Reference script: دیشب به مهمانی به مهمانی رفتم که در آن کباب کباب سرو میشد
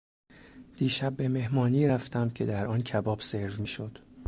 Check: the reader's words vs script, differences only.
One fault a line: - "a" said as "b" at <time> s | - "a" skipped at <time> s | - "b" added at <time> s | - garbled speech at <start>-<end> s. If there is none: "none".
- "به مهمانی" skipped at 1.9 s
- "کباب" skipped at 3.2 s